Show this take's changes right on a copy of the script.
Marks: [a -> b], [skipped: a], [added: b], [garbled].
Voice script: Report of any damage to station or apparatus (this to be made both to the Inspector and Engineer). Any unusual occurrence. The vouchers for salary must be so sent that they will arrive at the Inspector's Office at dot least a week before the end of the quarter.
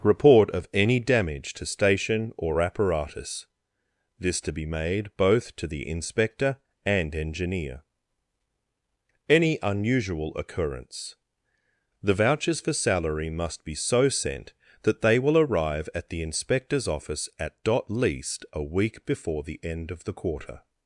Report of any damage to station or apparatus (this to be made both to the Inspector and Engineer). Any unusual occurrence. The vouchers for salary must be so sent that they will arrive at the Inspector's Office at dot least a week before the end of the quarter.